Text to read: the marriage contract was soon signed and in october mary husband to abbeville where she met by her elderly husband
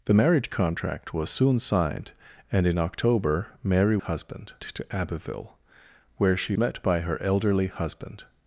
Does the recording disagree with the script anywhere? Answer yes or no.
no